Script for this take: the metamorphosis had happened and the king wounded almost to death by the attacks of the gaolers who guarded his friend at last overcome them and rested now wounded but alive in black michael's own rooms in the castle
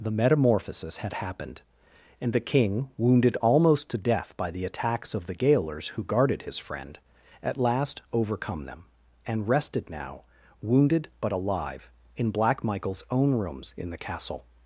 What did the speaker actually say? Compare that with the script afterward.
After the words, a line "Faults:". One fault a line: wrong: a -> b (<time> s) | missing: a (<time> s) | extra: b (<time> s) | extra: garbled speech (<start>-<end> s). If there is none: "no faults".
the metamorphosis had happened and the king wounded almost to death by the attacks of the gaolers who guarded his friend at last overcome them and rested now wounded but alive in black michael's own rooms in the castle
Faults:
no faults